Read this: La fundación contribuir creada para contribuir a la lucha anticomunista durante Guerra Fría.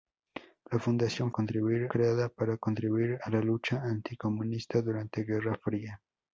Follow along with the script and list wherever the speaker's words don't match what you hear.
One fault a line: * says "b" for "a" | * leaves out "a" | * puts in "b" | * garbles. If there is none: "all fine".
all fine